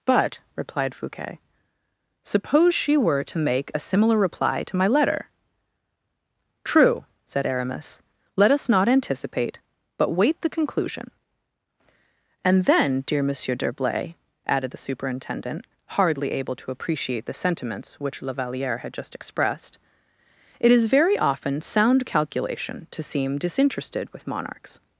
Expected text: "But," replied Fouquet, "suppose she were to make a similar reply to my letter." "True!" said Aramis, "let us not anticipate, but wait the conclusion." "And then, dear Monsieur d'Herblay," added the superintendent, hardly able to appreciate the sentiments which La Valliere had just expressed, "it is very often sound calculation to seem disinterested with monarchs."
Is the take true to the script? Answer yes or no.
yes